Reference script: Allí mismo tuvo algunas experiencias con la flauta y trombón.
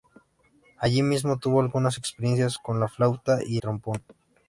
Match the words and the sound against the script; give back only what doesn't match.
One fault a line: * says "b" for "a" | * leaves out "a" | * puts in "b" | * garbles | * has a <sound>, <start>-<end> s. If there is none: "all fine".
all fine